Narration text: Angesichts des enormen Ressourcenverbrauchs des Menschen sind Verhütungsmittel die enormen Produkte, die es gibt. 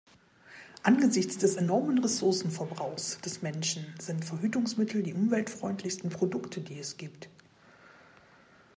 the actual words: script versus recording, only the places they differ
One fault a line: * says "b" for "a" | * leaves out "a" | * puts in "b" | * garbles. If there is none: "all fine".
* says "umweltfreundlichsten" for "enormen"